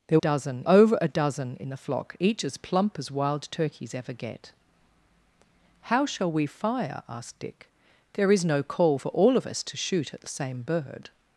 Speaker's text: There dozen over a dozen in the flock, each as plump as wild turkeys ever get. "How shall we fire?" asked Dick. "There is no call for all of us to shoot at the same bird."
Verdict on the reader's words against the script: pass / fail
pass